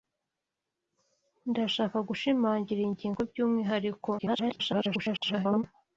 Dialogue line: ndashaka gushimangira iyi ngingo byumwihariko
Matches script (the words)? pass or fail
fail